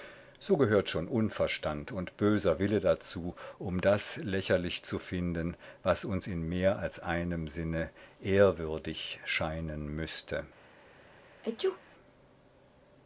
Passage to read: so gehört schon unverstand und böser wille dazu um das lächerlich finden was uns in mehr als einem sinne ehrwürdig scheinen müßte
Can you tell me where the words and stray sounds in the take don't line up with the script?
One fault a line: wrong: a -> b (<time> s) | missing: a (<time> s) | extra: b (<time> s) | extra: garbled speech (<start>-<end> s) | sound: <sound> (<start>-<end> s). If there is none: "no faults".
extra: zu (4.8 s)
sound: sneeze (11.4-11.8 s)